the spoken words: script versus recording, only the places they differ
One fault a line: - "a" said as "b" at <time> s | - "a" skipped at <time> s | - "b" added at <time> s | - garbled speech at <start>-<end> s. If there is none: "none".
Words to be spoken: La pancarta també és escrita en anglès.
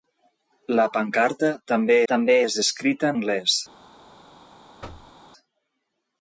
- "també" added at 2.1 s
- "en" skipped at 3.1 s